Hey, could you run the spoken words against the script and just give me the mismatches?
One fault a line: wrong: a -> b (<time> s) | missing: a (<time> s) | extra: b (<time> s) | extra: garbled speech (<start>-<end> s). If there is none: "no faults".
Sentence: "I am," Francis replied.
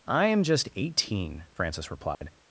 extra: just eighteen (0.4 s)